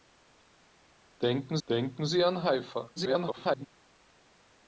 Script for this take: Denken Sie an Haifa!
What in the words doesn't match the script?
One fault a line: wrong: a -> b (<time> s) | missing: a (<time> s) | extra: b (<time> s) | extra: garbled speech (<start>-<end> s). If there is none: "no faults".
extra: denken (1.7 s)
extra: garbled speech (3.0-3.7 s)